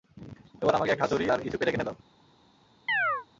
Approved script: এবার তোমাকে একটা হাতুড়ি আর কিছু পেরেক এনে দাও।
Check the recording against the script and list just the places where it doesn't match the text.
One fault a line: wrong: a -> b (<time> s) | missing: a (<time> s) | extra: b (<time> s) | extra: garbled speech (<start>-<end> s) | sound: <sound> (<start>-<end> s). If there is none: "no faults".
wrong: তোমাকে -> আমাকে (0.8 s)
sound: chirp (2.9-3.3 s)